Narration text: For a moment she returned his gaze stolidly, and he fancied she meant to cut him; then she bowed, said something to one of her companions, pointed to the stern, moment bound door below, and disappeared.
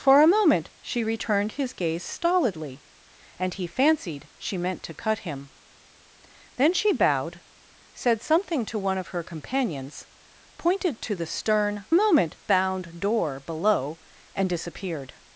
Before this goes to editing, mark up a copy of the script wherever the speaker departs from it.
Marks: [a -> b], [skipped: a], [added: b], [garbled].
For a moment she returned his gaze stolidly, and he fancied she meant to cut him; then she bowed, said something to one of her companions, pointed to the stern, moment bound door below, and disappeared.